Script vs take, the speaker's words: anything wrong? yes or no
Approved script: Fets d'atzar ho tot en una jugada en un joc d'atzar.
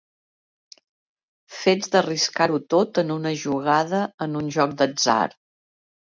yes